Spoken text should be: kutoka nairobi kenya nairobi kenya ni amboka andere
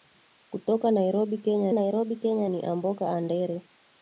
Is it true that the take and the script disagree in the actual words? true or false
false